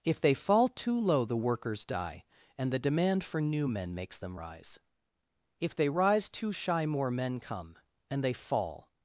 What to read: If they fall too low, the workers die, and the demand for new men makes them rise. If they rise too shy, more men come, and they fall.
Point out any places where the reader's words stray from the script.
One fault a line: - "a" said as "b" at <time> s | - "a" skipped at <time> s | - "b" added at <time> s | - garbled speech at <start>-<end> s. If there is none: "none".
none